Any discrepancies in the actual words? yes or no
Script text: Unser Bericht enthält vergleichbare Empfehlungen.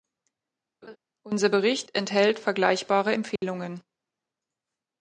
no